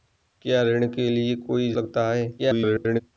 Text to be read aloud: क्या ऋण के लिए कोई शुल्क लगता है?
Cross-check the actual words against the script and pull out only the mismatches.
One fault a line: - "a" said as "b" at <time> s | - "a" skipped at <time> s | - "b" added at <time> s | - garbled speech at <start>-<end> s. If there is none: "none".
- "शुल्क" skipped at 1.7 s
- garbled speech at 2.4-3.0 s